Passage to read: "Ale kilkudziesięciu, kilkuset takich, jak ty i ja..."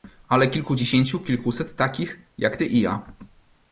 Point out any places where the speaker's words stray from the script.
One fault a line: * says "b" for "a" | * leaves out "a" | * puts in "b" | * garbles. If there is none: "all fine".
all fine